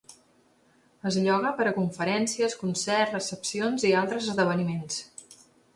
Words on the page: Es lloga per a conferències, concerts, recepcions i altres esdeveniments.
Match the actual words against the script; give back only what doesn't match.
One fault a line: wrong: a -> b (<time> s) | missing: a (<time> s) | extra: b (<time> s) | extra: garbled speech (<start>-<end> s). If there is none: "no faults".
no faults